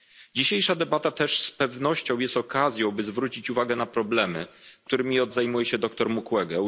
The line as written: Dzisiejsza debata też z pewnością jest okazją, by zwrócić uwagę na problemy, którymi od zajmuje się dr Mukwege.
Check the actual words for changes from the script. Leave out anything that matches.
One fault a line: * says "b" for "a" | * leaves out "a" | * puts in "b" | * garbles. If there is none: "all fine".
all fine